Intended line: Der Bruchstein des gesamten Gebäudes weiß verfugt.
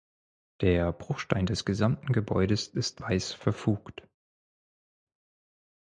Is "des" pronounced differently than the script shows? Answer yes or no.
no